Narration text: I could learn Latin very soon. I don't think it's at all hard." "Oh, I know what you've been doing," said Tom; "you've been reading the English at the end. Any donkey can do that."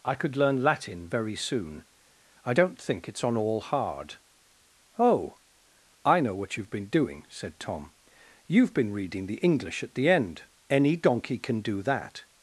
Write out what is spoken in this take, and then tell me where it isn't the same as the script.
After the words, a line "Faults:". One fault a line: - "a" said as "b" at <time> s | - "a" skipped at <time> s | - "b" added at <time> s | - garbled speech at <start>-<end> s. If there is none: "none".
I could learn Latin very soon. I don't think it's on all hard." "Oh, I know what you've been doing," said Tom; "you've been reading the English at the end. Any donkey can do that."
Faults:
- "at" said as "on" at 3.2 s